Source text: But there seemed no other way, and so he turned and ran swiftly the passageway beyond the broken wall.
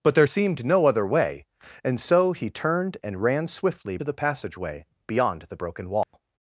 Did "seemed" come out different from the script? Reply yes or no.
no